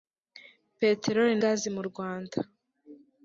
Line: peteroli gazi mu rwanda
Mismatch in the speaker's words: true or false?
false